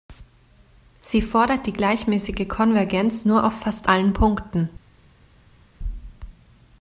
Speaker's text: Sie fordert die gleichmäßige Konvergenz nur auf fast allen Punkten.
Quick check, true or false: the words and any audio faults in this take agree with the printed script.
true